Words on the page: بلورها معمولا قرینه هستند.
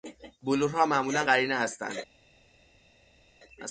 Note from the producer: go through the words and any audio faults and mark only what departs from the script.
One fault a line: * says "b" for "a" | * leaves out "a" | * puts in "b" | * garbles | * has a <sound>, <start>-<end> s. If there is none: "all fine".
all fine